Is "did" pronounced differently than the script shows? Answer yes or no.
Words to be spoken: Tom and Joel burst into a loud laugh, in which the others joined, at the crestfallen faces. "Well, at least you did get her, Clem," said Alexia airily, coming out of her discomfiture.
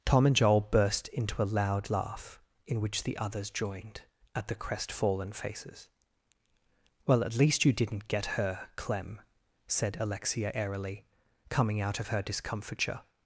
yes